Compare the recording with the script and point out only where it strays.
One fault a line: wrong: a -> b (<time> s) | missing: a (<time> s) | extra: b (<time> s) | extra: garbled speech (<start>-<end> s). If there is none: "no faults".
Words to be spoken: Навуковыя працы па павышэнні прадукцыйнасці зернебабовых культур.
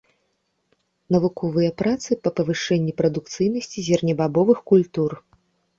no faults